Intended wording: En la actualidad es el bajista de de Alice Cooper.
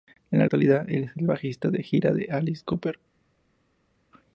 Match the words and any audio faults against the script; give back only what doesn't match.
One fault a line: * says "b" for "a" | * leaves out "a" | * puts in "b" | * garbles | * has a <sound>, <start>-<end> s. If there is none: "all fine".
* puts in "gira"